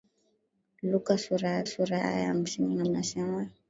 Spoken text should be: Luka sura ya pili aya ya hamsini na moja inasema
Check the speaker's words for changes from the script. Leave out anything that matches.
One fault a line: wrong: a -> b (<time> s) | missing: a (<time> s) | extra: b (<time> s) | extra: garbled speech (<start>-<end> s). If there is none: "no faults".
wrong: pili -> sura (1.6 s)
missing: moja (2.9 s)